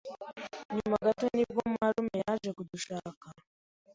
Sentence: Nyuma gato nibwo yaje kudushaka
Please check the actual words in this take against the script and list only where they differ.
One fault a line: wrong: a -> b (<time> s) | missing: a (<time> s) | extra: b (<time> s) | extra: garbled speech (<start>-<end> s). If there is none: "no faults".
extra: marume (1.8 s)